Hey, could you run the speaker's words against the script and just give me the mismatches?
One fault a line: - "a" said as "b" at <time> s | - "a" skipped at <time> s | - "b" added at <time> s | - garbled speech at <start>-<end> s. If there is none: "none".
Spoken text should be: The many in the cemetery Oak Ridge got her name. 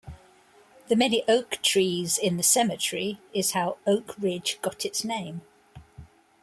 - "oak trees" added at 1.3 s
- "is how" added at 3.4 s
- "her" said as "its" at 4.8 s